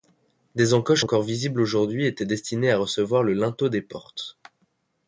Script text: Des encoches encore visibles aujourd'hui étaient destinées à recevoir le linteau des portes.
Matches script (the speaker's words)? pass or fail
pass